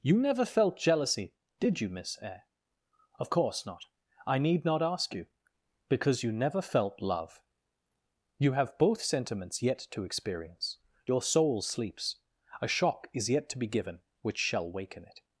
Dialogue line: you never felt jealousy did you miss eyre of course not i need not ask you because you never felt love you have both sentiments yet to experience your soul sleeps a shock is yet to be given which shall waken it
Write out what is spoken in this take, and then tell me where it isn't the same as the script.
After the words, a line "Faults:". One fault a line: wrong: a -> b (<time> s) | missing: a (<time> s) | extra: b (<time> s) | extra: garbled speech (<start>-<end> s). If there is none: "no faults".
you never felt jealousy did you miss eyre of course not i need not ask you because you never felt love you have both sentiments yet to experience your soul sleeps a shock is yet to be given which shall waken it
Faults:
no faults